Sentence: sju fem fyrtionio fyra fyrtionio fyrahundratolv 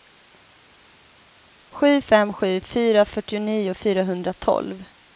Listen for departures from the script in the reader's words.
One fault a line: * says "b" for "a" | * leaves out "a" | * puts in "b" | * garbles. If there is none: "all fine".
* says "sju" for "fyrtionio"